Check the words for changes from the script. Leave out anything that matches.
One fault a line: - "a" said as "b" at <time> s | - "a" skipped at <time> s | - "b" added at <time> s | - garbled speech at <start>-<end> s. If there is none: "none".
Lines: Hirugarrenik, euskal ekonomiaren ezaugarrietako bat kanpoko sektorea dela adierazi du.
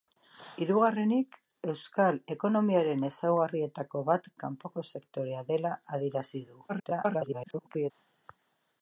- garbled speech at 6.7-7.9 s